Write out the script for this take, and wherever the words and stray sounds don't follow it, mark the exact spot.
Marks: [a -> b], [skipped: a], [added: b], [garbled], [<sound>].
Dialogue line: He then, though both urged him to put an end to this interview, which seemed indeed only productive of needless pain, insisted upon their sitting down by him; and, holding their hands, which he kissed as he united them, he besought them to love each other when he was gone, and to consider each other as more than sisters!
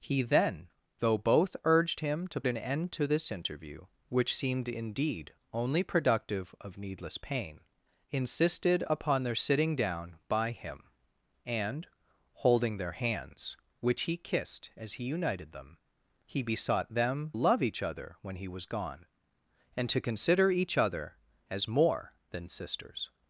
He then, though both urged him to [skipped: put] an end to this interview, which seemed indeed only productive of needless pain, insisted upon their sitting down by him; and, holding their hands, which he kissed as he united them, he besought them [skipped: to] love each other when he was gone, and to consider each other as more than sisters!